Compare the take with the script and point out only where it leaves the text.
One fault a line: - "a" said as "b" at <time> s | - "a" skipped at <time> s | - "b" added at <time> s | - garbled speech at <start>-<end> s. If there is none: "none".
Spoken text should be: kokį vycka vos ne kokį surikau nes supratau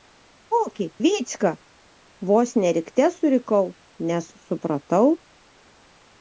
- "kokį" said as "rikte" at 2.8 s